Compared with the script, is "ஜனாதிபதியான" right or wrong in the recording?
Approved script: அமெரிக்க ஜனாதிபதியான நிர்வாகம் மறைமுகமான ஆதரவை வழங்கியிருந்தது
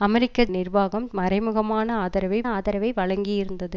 wrong